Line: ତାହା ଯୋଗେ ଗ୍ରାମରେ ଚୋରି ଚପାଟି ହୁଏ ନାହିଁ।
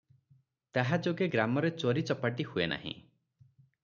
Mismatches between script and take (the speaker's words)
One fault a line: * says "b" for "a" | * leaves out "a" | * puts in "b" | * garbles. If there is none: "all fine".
all fine